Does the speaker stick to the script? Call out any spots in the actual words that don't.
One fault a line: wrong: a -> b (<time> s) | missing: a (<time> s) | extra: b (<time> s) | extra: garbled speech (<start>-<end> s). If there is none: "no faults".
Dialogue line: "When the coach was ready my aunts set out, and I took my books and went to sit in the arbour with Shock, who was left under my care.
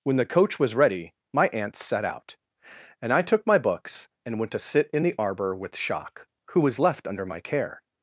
no faults